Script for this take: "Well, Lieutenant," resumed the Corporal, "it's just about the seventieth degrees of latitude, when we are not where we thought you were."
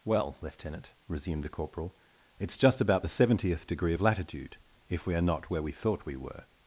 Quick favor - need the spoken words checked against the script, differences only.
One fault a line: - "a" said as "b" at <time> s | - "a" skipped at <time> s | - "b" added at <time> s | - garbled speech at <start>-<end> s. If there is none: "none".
- "degrees" said as "degree" at 3.7 s
- "when" said as "if" at 4.9 s
- "you" said as "we" at 6.1 s